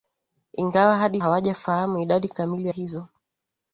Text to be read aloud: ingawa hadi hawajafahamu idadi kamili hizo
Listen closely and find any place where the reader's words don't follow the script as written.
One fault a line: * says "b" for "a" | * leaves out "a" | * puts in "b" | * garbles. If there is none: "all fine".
all fine